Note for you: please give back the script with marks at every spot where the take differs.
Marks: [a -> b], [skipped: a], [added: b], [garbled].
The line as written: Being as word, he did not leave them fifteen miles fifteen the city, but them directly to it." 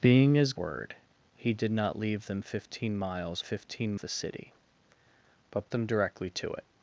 Being as word, he did not leave them fifteen miles fifteen the city, but them directly to it."